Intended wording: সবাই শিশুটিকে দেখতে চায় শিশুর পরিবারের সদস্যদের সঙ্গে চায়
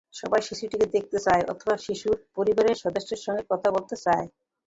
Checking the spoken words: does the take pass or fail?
fail